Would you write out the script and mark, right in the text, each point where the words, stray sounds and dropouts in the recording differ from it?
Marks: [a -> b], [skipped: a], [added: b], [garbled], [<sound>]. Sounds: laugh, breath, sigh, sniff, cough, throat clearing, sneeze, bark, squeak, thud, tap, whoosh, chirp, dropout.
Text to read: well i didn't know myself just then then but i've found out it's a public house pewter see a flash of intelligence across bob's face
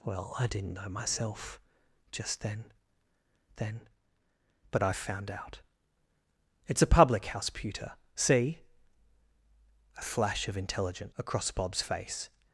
well i didn't know myself just then then but i've found out it's a public house pewter see a flash of intelligence across bob's face